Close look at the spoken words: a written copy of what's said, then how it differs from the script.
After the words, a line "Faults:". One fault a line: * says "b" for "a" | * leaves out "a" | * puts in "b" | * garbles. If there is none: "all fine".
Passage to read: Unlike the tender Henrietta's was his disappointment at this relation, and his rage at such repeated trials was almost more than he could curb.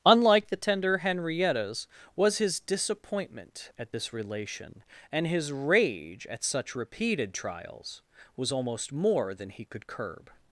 Unlike the tender Henrietta's was his disappointment at this relation, and his rage at such repeated trials was almost more than he could curb.
Faults:
all fine